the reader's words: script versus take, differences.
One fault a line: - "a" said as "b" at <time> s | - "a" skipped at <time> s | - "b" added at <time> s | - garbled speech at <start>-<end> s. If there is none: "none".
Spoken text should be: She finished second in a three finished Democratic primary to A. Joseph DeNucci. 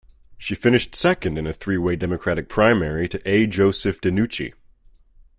- "finished" said as "way" at 1.8 s